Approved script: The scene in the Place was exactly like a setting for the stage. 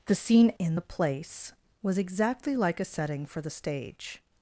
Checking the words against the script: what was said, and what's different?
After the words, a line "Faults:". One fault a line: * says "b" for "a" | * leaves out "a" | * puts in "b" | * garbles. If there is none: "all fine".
The scene in the Place was exactly like a setting for the stage.
Faults:
all fine